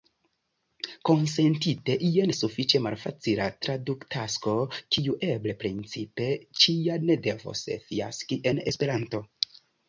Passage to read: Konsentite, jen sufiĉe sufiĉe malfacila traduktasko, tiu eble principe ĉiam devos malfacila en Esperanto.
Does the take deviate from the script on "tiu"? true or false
true